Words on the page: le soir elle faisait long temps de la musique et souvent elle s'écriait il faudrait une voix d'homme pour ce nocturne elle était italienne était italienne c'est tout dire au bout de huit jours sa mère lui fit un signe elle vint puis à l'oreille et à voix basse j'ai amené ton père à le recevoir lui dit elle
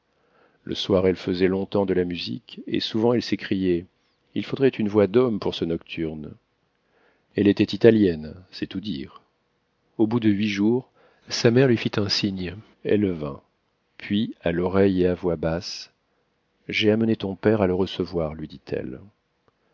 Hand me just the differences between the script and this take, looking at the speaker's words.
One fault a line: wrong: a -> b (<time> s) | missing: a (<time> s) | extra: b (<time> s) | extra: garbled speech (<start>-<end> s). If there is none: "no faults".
missing: était italienne (8.3 s)